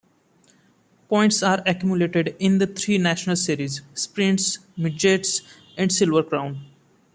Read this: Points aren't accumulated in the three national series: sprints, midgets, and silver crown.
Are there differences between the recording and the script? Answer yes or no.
yes